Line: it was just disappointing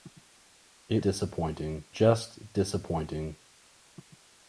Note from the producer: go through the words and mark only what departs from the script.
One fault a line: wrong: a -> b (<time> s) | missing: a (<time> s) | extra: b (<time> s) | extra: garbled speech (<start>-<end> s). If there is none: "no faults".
wrong: was -> disappointing (1.0 s)